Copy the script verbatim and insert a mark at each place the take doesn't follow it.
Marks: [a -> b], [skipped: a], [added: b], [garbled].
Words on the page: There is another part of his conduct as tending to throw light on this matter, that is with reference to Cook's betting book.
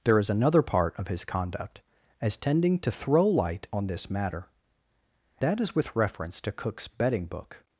There is another part of his conduct as tending to throw light on this matter, that is with reference to Cook's betting book.